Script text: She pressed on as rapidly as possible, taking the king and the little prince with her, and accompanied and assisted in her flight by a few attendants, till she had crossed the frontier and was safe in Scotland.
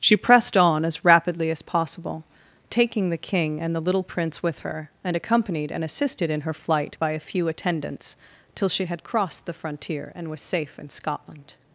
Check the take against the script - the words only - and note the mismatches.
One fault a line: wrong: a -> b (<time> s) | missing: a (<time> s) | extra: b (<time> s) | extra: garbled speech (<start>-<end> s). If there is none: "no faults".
no faults